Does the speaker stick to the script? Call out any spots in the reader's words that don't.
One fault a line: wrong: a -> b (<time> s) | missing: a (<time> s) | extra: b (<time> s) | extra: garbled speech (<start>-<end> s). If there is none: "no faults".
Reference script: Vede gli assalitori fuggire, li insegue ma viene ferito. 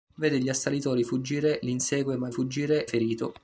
wrong: viene -> fuggire (2.3 s)